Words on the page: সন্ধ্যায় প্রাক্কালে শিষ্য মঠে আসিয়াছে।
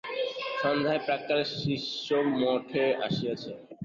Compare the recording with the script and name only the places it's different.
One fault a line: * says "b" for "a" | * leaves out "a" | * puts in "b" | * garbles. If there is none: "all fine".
all fine